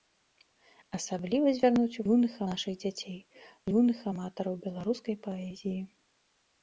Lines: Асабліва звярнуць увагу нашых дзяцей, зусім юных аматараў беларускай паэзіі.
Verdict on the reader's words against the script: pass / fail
fail